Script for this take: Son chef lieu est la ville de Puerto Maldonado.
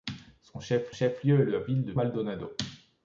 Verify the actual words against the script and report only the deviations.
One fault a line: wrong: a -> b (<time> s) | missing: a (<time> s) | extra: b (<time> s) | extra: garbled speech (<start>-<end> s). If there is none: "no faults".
extra: chef (0.9 s)
missing: Puerto (1.9 s)